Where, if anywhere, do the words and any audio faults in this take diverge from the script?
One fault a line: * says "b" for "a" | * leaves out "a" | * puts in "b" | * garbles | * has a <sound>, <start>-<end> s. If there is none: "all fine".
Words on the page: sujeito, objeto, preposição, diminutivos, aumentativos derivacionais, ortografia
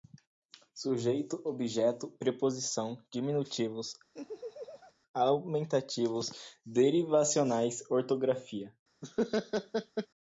* has a laugh, 4.1-4.9 s
* has a laugh, 9.0-10.1 s